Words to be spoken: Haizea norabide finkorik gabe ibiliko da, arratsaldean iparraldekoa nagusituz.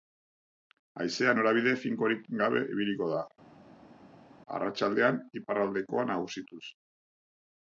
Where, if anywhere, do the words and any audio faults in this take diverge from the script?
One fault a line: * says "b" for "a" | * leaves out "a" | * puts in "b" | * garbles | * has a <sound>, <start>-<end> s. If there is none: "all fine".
all fine